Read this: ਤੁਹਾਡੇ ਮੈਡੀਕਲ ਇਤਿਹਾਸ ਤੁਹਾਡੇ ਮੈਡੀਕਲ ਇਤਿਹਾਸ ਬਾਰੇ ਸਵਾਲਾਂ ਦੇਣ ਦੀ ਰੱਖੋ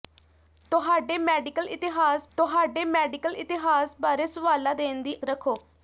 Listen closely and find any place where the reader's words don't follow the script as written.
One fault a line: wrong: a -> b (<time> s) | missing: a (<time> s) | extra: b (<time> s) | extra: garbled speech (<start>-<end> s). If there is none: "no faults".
no faults